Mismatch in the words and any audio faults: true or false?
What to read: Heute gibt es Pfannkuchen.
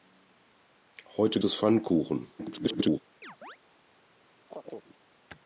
true